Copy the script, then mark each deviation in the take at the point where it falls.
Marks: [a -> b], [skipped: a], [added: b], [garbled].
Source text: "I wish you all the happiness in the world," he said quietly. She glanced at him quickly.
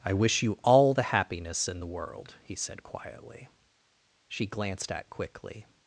"I wish you all the happiness in the world," he said quietly. She glanced at [skipped: him] quickly.